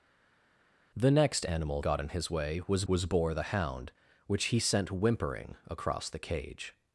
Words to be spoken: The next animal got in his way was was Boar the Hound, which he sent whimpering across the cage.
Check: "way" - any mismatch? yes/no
no